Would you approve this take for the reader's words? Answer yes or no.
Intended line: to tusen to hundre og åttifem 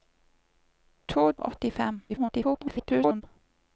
no